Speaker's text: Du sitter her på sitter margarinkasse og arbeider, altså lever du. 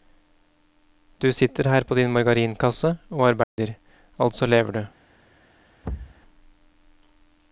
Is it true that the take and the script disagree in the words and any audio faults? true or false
true